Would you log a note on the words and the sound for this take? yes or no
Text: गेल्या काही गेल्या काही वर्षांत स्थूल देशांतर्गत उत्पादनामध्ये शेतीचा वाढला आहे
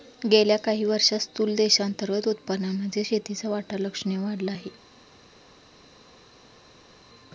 yes